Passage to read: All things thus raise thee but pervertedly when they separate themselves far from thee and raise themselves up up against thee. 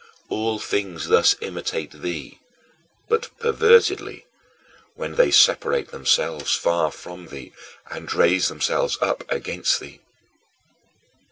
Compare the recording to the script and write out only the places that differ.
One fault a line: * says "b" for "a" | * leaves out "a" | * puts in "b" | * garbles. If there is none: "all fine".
* says "imitate" for "raise"
* leaves out "up"